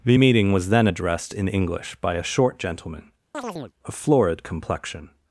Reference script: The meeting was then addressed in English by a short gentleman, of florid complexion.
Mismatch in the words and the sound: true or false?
true